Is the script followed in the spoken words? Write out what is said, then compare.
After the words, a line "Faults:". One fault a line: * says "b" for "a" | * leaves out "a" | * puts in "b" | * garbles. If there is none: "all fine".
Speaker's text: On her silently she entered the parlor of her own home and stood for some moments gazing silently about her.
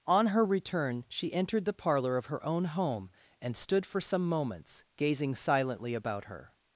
On her return she entered the parlor of her own home and stood for some moments gazing silently about her.
Faults:
* says "return" for "silently"